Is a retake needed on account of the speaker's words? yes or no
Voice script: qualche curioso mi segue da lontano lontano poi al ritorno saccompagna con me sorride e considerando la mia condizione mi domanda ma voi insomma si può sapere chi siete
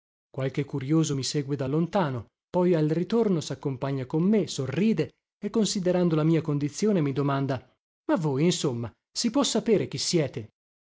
yes